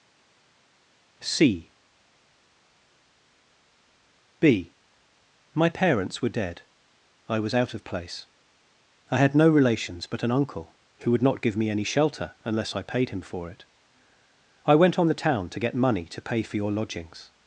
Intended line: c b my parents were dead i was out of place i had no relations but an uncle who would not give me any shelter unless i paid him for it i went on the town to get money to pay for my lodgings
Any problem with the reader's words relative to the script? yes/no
yes